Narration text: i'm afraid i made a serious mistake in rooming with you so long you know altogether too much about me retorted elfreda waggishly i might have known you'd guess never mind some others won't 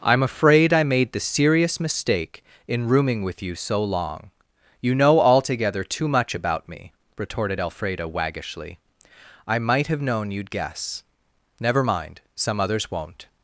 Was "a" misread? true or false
true